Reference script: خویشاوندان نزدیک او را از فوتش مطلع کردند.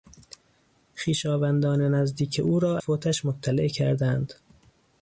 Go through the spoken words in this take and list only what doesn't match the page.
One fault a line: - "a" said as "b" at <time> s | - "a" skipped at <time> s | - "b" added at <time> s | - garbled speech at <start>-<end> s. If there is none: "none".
- "از" skipped at 2.8 s